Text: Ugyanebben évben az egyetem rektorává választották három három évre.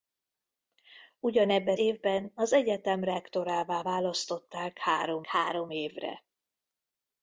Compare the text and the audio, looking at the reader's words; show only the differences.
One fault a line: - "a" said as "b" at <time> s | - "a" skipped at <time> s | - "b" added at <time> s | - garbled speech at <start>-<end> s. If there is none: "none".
none